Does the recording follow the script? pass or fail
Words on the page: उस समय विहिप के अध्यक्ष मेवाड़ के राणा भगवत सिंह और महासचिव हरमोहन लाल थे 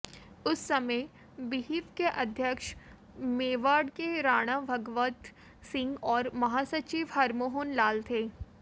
pass